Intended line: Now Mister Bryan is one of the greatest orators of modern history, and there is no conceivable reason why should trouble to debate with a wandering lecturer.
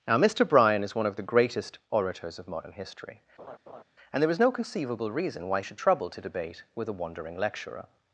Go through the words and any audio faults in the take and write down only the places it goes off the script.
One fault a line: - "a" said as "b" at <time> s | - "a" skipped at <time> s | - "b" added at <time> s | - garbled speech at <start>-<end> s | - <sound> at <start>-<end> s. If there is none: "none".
- laugh at 3.4-3.8 s